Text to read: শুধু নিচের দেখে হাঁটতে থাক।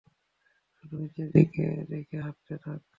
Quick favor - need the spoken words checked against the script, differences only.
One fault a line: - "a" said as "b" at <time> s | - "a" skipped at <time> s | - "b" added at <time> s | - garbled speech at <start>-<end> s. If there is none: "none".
- "দিকে" added at 1.3 s